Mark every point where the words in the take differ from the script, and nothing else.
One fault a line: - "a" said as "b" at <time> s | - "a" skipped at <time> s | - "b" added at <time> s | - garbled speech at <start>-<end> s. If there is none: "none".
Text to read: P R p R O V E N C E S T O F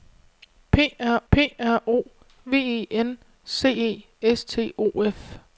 none